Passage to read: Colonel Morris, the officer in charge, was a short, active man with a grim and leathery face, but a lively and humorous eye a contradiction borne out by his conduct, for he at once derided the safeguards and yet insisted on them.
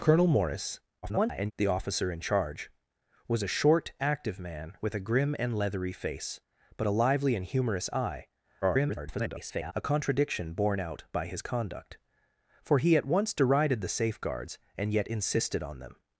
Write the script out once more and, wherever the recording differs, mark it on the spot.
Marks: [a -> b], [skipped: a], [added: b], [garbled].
Colonel Morris, [garbled] the officer in charge, was a short, active man with a grim and leathery face, but a lively and humorous eye [garbled] a contradiction borne out by his conduct, for he at once derided the safeguards and yet insisted on them.